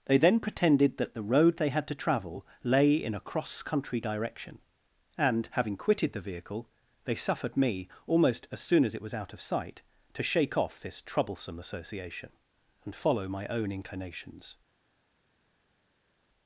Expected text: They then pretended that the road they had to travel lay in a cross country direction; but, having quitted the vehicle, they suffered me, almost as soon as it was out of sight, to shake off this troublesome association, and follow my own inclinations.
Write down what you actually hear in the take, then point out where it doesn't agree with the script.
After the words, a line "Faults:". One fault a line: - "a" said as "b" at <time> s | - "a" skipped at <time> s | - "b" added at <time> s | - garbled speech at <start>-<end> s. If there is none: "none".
They then pretended that the road they had to travel lay in a cross country direction; and, having quitted the vehicle, they suffered me, almost as soon as it was out of sight, to shake off this troublesome association, and follow my own inclinations.
Faults:
- "but" said as "and" at 5.2 s